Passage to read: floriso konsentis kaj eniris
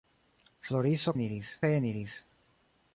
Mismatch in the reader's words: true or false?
true